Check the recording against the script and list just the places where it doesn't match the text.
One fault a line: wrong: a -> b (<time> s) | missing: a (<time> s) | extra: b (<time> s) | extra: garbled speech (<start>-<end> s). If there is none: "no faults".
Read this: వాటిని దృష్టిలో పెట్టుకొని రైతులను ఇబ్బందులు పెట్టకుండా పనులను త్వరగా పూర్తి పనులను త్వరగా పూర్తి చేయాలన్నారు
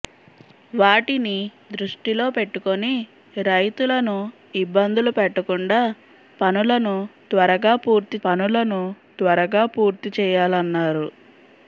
no faults